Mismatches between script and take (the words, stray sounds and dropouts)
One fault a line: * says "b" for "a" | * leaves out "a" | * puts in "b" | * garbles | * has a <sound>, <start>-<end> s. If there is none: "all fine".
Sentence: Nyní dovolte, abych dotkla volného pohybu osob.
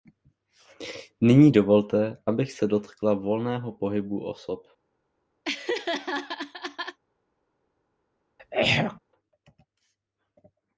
* puts in "se"
* has a laugh, 5.4-7.0 s
* has a throat clearing, 8.4-9.0 s